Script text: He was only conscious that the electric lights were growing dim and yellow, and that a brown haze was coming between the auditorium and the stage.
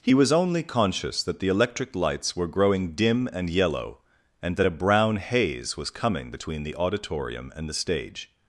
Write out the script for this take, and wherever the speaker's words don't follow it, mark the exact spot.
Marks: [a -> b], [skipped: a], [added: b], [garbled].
He was only conscious that the electric lights were growing dim and yellow, and that a brown haze was coming between the auditorium and the stage.